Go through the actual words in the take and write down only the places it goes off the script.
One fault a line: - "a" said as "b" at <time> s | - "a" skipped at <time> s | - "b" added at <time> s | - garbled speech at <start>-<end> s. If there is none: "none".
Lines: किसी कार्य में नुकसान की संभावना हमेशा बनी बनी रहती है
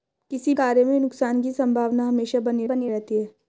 none